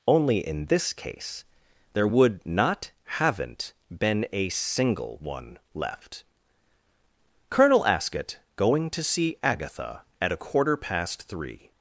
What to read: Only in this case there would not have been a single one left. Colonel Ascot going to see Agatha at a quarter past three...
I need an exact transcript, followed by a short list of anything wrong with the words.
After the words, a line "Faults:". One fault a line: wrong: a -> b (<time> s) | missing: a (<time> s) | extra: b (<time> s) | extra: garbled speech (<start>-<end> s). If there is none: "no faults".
Only in this case there would not haven't been a single one left. Colonel Ascot going to see Agatha at a quarter past three...
Faults:
wrong: have -> haven't (3.0 s)